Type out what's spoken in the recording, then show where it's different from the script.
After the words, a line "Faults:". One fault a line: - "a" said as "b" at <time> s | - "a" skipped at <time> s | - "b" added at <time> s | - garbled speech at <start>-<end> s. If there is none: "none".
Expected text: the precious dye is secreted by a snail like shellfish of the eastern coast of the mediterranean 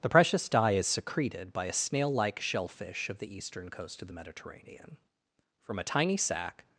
the precious dye is secreted by a snail like shellfish of the eastern coast of the mediterranean from a tiny sac
Faults:
- "from a tiny sac" added at 5.6 s